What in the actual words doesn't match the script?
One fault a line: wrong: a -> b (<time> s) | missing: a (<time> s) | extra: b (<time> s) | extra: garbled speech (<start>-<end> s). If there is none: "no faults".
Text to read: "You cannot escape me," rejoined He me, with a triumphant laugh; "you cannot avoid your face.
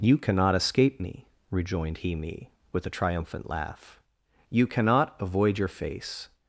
no faults